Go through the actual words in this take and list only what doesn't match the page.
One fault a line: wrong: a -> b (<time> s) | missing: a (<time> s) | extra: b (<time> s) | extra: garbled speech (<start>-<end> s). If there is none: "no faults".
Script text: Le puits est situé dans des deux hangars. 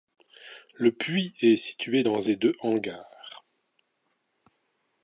no faults